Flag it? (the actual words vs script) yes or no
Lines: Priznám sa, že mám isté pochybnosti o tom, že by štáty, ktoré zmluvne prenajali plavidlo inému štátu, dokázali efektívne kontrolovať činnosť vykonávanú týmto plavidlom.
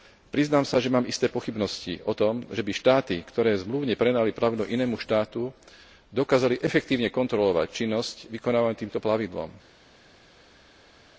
no